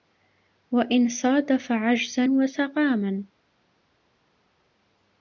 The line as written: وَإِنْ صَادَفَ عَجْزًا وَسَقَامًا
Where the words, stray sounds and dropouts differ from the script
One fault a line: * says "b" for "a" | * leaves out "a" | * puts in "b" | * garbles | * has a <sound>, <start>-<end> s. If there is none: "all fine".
all fine